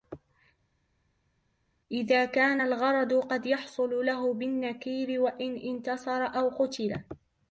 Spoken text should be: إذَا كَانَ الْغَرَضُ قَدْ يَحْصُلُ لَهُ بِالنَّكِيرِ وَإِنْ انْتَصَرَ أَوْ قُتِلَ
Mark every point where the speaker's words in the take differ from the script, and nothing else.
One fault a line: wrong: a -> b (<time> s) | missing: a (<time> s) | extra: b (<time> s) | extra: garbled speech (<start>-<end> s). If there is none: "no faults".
no faults